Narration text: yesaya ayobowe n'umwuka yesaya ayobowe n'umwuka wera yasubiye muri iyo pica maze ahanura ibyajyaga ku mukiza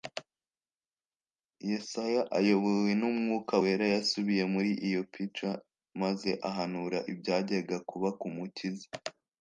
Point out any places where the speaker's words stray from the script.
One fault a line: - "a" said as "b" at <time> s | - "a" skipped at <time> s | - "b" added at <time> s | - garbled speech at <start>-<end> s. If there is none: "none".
- "yesaya ayobowe n'umwuka" skipped at 3.5 s
- "kuba" added at 7.9 s